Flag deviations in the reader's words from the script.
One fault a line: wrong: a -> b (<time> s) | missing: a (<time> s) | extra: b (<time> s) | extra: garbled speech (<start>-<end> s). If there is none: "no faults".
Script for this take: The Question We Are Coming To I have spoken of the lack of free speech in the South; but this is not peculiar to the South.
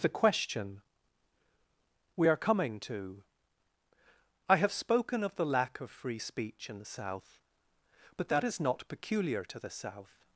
wrong: this -> that (8.3 s)